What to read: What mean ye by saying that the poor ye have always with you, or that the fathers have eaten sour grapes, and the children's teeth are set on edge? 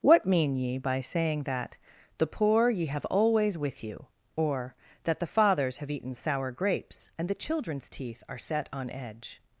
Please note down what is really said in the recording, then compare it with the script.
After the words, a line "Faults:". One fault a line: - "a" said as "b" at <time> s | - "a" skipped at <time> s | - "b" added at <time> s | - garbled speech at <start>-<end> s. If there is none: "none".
What mean ye by saying that the poor ye have always with you, or that the fathers have eaten sour grapes, and the children's teeth are set on edge?
Faults:
none